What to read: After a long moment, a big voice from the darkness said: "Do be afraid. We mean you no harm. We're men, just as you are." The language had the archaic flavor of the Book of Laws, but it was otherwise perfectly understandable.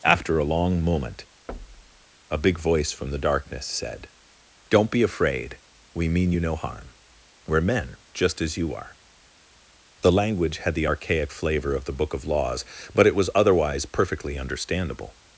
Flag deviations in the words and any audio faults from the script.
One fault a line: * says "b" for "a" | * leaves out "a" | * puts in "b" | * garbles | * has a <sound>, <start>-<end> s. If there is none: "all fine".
* has a thud, 1.5-2.1 s
* says "Don't" for "Do"